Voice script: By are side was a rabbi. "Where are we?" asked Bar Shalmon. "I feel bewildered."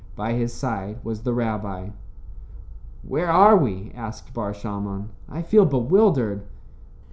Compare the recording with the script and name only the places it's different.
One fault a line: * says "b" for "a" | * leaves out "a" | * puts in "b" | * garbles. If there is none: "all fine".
* says "his" for "are"
* says "the" for "a"